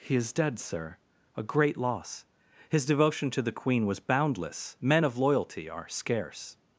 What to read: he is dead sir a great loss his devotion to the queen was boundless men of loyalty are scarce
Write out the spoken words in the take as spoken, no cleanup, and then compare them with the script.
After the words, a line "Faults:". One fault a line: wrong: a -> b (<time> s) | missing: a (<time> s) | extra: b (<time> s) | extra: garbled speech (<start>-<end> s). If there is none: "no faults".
he is dead sir a great loss his devotion to the queen was boundless men of loyalty are scarce
Faults:
no faults